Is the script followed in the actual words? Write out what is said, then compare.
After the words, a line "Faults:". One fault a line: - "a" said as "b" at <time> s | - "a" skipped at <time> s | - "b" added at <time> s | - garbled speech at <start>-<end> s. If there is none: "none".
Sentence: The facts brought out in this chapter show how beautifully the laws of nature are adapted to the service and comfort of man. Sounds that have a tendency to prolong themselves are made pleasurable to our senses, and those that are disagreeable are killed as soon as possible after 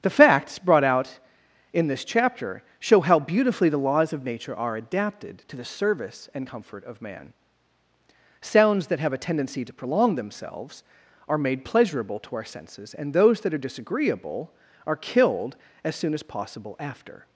The facts brought out in this chapter show how beautifully the laws of nature are adapted to the service and comfort of man. Sounds that have a tendency to prolong themselves are made pleasurable to our senses, and those that are disagreeable are killed as soon as possible after
Faults:
none